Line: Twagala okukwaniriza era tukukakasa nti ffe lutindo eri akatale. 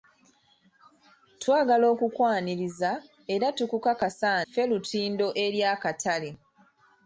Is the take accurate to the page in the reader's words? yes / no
no